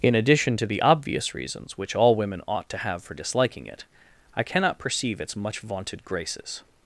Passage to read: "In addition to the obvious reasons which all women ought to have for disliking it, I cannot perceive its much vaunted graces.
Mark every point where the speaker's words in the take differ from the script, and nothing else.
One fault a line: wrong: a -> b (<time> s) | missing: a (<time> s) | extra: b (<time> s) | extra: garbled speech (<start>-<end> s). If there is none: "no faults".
no faults